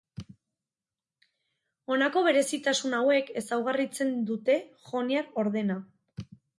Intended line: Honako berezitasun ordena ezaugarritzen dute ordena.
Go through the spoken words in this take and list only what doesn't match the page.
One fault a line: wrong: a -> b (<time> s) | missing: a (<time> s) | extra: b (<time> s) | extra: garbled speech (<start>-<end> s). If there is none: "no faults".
wrong: ordena -> hauek (3.0 s)
extra: joniar (4.9 s)